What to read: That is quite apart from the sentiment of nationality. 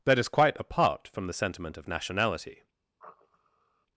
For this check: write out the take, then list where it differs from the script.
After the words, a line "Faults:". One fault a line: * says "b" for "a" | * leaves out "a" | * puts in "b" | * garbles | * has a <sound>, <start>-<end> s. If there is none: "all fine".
That is quite apart from the sentiment of nationality.
Faults:
* has a sniff, 3.0-3.9 s